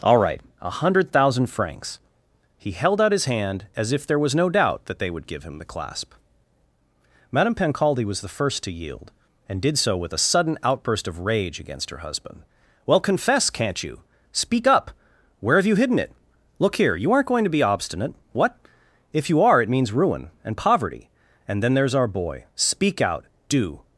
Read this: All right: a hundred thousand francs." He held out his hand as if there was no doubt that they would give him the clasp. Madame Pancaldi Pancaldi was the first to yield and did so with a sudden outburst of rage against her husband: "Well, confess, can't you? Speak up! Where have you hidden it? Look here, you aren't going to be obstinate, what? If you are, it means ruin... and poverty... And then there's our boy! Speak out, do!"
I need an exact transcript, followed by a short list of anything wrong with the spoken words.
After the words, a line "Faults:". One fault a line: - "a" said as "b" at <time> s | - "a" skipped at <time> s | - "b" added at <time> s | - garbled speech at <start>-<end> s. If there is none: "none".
All right: a hundred thousand francs." He held out his hand as if there was no doubt that they would give him the clasp. Madame Pancaldi was the first to yield and did so with a sudden outburst of rage against her husband: "Well, confess, can't you? Speak up! Where have you hidden it? Look here, you aren't going to be obstinate, what? If you are, it means ruin... and poverty... And then there's our boy! Speak out, do!"
Faults:
- "Pancaldi" skipped at 8.1 s